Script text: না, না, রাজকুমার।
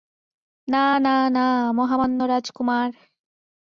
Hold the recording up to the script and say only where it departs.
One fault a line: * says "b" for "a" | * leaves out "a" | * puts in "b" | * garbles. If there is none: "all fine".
* puts in "না মহামান্য"